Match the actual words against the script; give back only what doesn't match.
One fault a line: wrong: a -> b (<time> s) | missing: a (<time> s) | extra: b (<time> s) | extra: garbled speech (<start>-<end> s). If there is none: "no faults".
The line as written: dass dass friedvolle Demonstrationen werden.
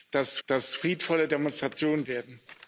no faults